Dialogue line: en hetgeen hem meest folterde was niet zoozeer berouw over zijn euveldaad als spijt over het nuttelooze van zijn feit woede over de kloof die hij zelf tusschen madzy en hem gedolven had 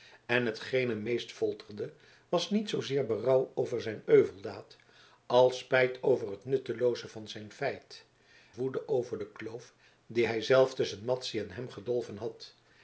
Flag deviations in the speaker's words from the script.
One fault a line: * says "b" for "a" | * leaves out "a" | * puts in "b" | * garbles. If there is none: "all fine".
all fine